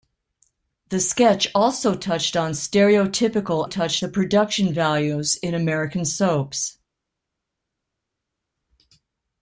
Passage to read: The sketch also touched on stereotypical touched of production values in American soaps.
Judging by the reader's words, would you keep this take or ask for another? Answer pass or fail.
pass